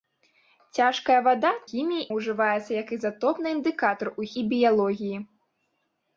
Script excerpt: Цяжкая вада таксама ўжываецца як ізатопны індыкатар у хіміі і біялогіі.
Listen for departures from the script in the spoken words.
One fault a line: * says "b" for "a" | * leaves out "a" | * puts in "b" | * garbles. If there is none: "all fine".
* says "хіміі" for "таксама"
* leaves out "хіміі"